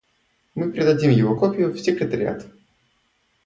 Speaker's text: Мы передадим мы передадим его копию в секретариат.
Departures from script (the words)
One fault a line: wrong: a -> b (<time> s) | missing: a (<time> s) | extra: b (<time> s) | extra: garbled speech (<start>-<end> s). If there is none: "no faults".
missing: мы передадим (1.1 s)